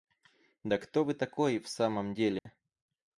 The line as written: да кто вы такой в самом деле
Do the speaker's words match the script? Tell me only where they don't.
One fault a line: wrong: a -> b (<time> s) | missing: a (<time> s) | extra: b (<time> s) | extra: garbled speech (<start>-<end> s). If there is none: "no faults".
no faults